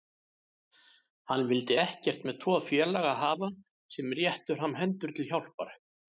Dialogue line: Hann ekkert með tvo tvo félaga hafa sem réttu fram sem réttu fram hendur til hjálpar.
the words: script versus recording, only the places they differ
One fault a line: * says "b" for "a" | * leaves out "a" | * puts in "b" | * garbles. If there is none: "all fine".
* puts in "vildi"
* leaves out "tvo"
* leaves out "sem réttu fram"